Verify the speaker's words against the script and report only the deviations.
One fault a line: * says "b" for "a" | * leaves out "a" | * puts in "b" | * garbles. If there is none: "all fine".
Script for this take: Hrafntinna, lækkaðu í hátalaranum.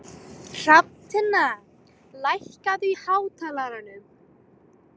all fine